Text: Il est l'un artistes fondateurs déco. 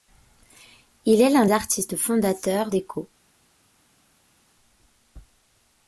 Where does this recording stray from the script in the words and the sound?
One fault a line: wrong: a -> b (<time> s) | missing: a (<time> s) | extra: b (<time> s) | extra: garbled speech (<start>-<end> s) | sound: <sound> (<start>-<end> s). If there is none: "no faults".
no faults